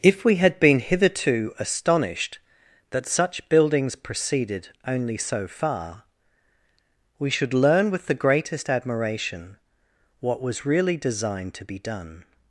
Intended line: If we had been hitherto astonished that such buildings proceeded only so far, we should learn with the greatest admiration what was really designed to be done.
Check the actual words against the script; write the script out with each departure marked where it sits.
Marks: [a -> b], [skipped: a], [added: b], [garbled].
If we had been hitherto astonished that such buildings proceeded only so far, we should learn with the greatest admiration what was really designed to be done.